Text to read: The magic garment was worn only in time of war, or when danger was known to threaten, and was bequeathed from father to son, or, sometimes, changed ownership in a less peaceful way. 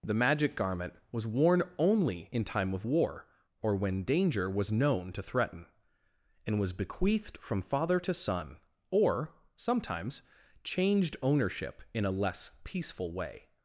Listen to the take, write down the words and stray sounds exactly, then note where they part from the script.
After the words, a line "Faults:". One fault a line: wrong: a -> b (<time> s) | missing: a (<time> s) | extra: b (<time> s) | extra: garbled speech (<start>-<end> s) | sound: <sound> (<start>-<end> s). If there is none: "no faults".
The magic garment was worn only in time of war, or when danger was known to threaten, and was bequeathed from father to son, or, sometimes, changed ownership in a less peaceful way.
Faults:
no faults